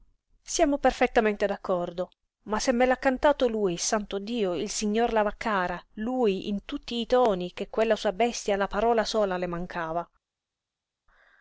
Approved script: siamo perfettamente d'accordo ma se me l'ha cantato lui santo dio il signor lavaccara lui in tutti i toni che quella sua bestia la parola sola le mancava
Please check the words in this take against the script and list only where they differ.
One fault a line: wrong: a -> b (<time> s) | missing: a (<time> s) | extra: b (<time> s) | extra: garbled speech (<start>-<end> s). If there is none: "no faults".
no faults